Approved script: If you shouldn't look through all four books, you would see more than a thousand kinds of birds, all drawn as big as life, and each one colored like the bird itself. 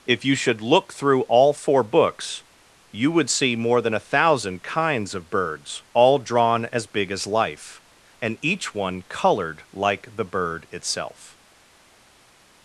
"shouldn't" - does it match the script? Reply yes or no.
no